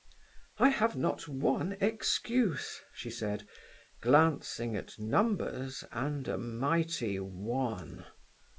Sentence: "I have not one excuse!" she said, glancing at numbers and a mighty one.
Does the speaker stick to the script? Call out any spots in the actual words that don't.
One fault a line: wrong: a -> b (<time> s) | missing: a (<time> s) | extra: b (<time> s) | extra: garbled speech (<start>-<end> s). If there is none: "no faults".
no faults